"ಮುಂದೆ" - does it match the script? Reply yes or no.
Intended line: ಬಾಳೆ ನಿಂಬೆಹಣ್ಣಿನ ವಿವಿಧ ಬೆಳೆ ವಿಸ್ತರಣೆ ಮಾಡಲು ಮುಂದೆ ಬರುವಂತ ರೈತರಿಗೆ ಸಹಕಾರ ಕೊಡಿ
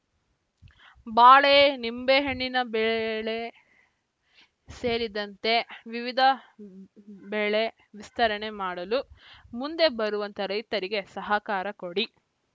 yes